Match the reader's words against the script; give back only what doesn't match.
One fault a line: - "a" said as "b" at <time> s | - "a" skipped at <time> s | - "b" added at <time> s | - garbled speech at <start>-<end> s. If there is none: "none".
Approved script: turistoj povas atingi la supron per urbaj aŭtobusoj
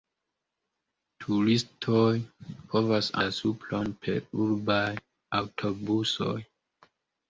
- "atingi" skipped at 3.1 s